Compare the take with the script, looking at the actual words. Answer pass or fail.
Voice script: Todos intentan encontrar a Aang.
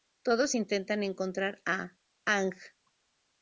pass